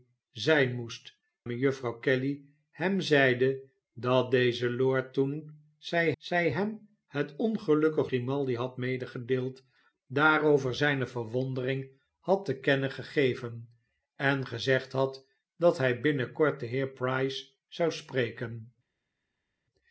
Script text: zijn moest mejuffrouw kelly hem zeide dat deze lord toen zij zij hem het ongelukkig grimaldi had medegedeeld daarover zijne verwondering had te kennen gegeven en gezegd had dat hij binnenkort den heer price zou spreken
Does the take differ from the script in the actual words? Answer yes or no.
no